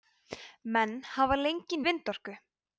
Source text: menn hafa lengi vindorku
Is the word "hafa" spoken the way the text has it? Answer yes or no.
yes